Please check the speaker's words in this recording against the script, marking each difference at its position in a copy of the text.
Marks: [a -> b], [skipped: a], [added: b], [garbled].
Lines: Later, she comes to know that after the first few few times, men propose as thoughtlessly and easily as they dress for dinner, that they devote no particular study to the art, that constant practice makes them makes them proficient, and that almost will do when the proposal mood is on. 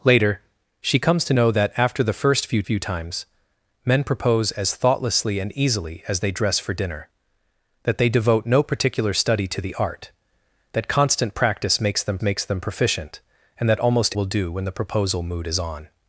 Later, she comes to know that after the first few few times, men propose as thoughtlessly and easily as they dress for dinner, that they devote no particular study to the art, that constant practice makes them makes them proficient, and that almost will do when the proposal mood is on.